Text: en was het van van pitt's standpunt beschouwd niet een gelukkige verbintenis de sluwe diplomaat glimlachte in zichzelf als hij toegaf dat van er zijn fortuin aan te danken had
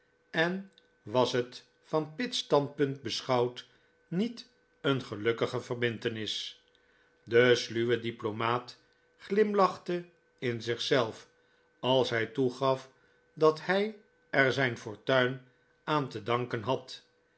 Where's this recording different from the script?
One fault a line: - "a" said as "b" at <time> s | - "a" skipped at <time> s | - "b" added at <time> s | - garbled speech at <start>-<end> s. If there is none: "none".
- "van" skipped at 2.1 s
- "van" said as "hij" at 13.6 s